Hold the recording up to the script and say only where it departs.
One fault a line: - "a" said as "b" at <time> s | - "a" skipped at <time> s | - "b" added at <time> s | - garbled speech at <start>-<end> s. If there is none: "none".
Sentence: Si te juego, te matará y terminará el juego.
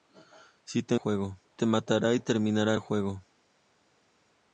none